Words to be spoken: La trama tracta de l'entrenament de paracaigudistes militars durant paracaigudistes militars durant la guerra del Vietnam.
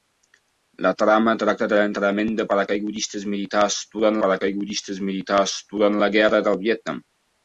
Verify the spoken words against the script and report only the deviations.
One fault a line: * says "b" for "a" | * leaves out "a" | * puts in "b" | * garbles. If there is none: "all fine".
all fine